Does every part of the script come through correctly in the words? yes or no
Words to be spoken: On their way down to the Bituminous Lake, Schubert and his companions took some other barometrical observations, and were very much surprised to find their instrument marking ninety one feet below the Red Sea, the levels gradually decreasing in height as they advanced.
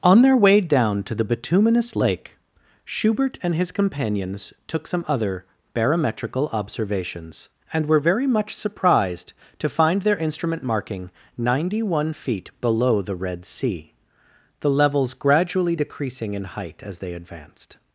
yes